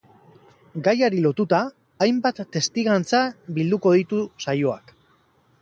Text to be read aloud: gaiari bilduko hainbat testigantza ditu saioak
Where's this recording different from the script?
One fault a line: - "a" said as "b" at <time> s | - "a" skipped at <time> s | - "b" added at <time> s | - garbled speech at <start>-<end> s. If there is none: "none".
- "bilduko" said as "lotuta" at 1.2 s
- "bilduko" added at 3.6 s